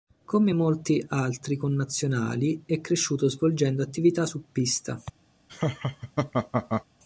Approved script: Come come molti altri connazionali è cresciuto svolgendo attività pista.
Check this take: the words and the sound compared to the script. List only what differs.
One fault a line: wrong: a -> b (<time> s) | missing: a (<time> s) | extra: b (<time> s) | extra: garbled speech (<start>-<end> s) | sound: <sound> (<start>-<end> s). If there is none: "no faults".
missing: come (0.5 s)
extra: su (4.2 s)
sound: laugh (5.5-6.8 s)